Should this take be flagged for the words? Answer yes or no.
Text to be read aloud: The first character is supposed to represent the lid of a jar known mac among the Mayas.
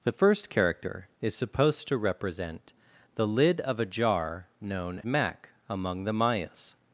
no